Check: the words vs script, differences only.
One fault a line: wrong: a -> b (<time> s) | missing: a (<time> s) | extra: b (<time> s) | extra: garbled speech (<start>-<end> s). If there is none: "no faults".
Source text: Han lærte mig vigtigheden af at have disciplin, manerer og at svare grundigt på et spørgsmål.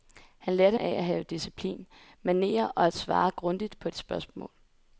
missing: mig vigtigheden (0.8 s)